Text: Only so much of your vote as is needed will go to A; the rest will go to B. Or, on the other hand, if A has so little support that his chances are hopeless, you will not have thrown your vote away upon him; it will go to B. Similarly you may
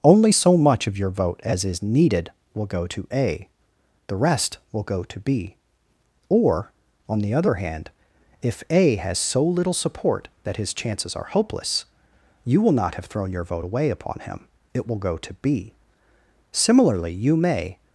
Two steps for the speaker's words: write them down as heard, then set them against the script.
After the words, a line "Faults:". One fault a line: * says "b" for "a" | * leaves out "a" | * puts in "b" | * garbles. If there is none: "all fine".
Only so much of your vote as is needed will go to A; the rest will go to B. Or, on the other hand, if A has so little support that his chances are hopeless, you will not have thrown your vote away upon him; it will go to B. Similarly you may
Faults:
all fine